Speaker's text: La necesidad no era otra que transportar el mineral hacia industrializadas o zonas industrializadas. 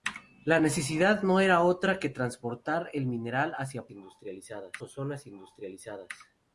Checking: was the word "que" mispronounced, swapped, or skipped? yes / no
no